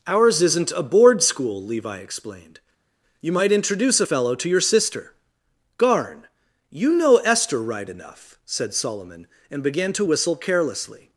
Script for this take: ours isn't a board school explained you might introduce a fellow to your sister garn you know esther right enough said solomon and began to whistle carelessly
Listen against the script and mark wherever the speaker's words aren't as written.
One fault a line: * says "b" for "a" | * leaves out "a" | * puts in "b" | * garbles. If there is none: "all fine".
* puts in "levi"